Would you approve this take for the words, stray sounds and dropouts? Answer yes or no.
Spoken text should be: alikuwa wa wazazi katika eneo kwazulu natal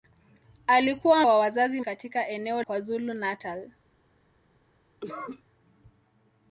no